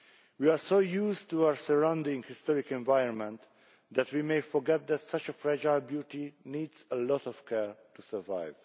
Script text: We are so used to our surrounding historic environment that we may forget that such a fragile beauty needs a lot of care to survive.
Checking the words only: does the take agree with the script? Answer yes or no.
yes